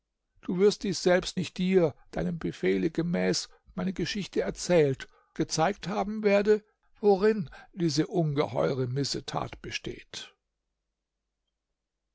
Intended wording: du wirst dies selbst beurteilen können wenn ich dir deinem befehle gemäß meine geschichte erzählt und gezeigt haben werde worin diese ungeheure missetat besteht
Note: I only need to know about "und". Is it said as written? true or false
false